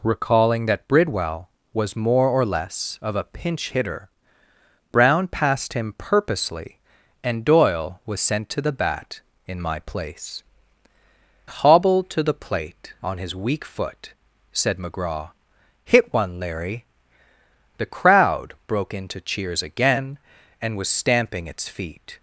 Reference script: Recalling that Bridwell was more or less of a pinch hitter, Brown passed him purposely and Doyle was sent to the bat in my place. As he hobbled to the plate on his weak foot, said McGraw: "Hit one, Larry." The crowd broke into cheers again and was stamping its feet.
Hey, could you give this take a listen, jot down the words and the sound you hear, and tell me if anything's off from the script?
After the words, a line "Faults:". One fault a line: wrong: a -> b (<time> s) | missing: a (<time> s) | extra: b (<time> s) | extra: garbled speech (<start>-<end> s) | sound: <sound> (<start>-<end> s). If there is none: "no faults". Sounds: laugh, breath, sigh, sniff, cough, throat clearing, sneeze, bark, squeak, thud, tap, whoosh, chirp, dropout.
Recalling that Bridwell was more or less of a pinch hitter, Brown passed him purposely and Doyle was sent to the bat in my place. Hobbled to the plate on his weak foot, said McGraw: "Hit one, Larry." The crowd broke into cheers again and was stamping its feet.
Faults:
missing: As he (10.4 s)